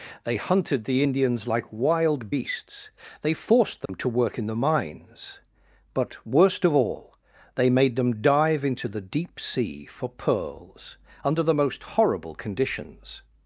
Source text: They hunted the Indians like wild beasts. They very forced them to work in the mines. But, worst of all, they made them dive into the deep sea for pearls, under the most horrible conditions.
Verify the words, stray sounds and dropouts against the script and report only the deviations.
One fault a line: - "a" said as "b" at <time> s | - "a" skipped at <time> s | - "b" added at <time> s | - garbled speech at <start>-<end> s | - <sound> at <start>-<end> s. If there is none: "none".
- "very" skipped at 3.3 s
- dropout at 3.9-3.9 s